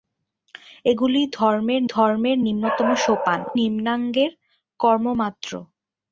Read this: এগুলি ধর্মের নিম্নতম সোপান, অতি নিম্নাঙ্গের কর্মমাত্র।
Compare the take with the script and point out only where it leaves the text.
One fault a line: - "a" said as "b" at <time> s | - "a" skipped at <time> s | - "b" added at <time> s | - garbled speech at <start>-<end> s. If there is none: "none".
- "ধর্মের" added at 1.9 s
- "অতি" skipped at 3.4 s